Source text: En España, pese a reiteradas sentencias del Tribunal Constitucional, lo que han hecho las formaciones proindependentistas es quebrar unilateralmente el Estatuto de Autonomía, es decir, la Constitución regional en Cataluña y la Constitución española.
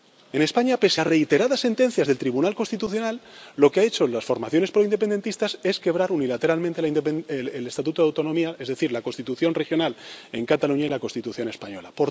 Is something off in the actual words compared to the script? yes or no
no